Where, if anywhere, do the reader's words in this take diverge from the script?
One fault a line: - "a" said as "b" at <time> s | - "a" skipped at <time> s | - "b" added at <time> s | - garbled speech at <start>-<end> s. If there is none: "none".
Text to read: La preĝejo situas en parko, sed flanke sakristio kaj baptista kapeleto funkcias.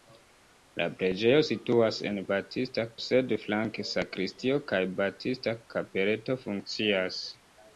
- "parko" said as "baptista" at 2.3 s